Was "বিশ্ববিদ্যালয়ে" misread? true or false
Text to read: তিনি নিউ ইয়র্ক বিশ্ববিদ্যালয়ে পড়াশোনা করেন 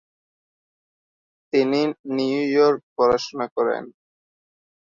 true